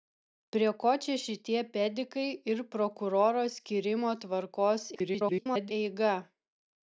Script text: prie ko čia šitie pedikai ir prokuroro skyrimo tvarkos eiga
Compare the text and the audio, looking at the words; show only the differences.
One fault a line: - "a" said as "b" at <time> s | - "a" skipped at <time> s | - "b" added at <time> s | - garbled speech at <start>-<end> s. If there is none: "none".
- garbled speech at 4.9-5.7 s